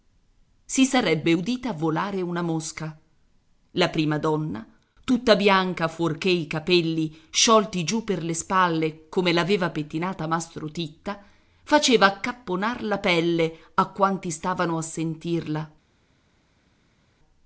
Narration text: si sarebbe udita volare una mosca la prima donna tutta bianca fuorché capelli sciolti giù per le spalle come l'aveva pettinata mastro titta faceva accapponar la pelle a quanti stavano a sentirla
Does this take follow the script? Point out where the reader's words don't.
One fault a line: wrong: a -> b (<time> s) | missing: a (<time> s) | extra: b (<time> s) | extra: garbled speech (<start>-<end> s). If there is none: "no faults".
extra: i (6.3 s)